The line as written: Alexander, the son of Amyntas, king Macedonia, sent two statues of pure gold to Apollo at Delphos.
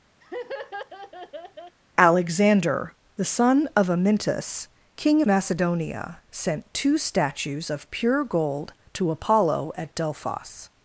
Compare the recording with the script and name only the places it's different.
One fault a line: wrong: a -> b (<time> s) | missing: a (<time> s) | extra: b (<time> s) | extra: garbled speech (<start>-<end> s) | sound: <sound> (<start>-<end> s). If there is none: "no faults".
sound: laugh (0.2-1.8 s)